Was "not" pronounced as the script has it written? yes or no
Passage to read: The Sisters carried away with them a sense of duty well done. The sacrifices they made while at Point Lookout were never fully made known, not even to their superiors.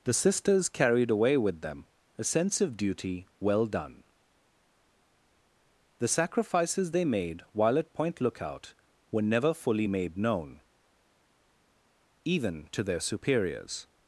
no